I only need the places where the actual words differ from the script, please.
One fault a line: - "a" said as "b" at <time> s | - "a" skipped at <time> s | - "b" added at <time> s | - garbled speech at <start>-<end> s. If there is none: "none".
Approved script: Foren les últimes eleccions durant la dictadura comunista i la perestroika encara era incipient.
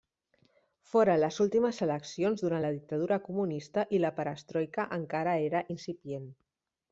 none